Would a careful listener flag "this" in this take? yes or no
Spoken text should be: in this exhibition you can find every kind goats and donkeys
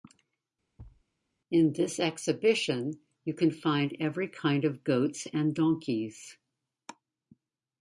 no